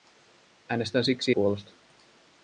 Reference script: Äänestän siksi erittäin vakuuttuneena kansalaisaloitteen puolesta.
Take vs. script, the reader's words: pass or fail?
fail